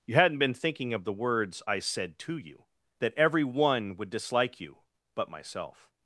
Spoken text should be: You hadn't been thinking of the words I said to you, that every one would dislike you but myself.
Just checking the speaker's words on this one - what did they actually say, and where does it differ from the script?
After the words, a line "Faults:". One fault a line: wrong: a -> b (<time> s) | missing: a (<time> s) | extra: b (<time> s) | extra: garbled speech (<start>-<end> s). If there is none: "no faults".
You hadn't been thinking of the words I said to you, that every one would dislike you but myself.
Faults:
no faults